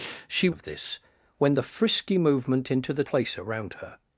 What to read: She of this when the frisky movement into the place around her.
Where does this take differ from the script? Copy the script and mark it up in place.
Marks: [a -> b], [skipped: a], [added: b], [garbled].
She of this when the frisky movement into the place around her.